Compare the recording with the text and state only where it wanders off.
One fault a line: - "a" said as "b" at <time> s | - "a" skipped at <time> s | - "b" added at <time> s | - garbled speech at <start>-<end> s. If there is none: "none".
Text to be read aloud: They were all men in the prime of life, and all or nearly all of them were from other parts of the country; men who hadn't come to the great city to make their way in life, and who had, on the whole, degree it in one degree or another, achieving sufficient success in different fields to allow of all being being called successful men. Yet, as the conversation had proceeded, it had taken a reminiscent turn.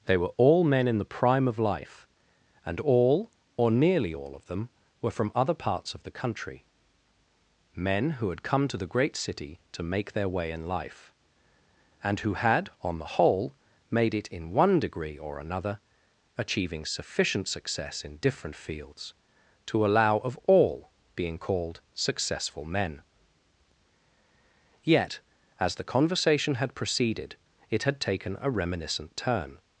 - "hadn't" said as "had" at 8.3 s
- "degree" said as "made" at 13.9 s
- "being" skipped at 21.4 s